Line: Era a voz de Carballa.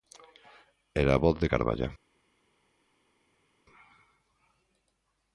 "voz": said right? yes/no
yes